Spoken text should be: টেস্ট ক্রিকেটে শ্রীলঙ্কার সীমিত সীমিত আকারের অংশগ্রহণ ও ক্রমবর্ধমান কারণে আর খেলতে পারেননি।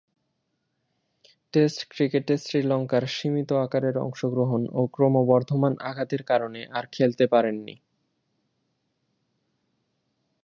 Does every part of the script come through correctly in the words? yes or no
no